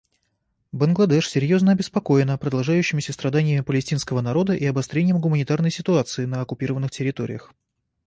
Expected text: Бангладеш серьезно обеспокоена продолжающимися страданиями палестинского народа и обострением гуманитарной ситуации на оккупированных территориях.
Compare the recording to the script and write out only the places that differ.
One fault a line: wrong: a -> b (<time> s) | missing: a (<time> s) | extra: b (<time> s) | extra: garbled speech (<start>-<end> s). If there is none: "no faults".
no faults